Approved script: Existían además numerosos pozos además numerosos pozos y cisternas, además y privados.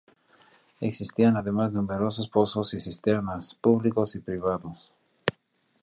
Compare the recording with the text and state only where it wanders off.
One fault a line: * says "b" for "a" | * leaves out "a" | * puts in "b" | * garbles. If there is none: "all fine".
* leaves out "además numerosos pozos"
* says "públicos" for "además"